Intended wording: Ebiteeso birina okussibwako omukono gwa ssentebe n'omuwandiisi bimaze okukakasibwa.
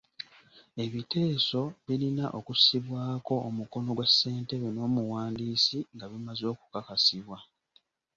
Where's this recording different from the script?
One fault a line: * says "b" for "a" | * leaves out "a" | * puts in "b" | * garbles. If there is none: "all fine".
* puts in "nga"